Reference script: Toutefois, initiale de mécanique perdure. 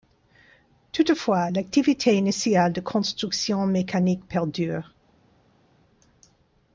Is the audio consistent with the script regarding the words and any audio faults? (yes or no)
no